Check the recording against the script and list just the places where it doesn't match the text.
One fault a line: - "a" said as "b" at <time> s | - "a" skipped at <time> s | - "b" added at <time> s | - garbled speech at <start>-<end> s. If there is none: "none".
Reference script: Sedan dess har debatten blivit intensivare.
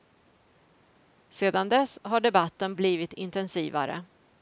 none